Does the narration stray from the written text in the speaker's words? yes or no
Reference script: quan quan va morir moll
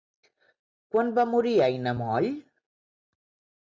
yes